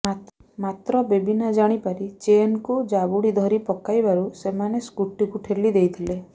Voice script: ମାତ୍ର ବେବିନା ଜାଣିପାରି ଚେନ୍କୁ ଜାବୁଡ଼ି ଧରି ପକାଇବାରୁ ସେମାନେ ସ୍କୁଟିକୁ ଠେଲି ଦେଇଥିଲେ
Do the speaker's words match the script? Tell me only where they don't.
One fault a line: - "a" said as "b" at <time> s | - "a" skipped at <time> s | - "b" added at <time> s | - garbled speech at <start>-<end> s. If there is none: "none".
none